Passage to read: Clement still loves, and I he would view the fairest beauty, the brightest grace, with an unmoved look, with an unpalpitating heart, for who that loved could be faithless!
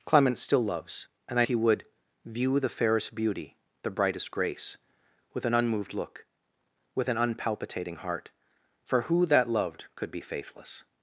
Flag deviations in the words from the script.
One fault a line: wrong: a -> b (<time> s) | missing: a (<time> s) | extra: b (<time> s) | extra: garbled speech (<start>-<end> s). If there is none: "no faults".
no faults